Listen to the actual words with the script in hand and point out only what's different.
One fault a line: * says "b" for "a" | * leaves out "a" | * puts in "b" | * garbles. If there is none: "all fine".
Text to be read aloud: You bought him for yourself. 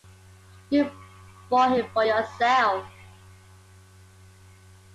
all fine